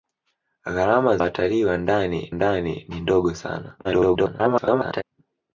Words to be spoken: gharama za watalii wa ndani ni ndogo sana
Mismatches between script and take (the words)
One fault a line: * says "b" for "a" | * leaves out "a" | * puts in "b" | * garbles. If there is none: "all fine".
* leaves out "za"
* puts in "ndani"
* garbles